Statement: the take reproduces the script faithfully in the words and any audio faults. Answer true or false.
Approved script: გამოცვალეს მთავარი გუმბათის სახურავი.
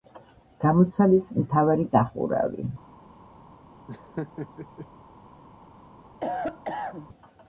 false